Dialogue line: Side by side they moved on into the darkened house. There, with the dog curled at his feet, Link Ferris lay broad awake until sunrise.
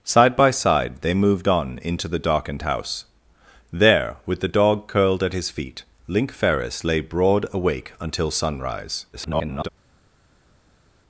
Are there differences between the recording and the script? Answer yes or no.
yes